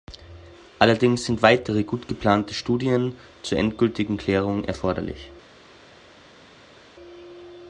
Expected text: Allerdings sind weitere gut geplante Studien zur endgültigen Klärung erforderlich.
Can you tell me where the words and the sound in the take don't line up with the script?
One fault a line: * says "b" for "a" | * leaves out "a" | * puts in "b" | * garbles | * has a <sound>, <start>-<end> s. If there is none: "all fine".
all fine